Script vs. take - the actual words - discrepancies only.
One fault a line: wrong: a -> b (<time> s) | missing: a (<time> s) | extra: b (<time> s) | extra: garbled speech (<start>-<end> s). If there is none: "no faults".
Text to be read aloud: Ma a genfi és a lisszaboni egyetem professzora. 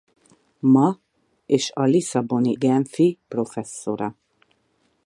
missing: a genfi (1.0 s)
wrong: egyetem -> genfi (2.5 s)